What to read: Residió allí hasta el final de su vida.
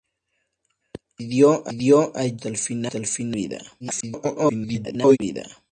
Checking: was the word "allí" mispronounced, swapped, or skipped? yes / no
no